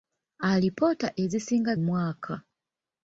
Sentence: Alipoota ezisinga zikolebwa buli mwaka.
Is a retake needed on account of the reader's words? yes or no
yes